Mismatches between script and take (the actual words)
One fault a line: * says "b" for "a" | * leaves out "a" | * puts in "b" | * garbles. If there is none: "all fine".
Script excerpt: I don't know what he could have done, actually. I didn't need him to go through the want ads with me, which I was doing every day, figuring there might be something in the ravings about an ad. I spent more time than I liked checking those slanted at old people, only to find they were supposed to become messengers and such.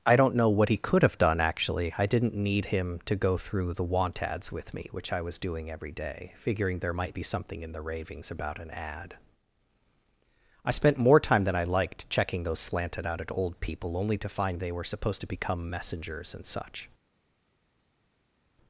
* puts in "out"